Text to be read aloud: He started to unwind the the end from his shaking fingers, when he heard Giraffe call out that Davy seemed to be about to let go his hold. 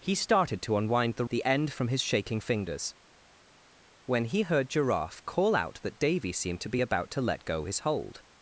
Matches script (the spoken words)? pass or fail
pass